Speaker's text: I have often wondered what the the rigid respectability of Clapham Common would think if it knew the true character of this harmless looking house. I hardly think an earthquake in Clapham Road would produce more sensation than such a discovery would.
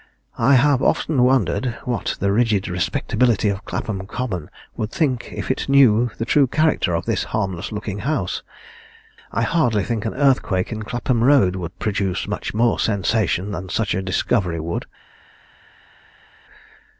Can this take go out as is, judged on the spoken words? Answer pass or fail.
fail